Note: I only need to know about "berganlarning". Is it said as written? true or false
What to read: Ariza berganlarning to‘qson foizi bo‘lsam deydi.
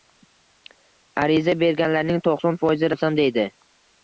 true